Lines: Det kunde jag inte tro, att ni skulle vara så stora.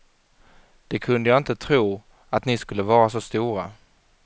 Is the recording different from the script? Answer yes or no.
no